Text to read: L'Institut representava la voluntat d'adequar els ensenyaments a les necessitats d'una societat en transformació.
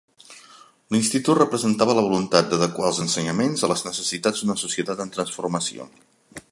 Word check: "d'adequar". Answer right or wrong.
right